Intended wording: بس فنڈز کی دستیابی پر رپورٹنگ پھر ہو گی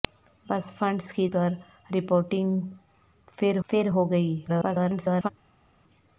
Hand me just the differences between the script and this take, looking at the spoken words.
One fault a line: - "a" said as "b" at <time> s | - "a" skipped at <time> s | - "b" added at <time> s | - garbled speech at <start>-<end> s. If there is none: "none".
- "دستیابی" skipped at 1.3 s
- "پھر" added at 3.7 s
- garbled speech at 4.5-5.3 s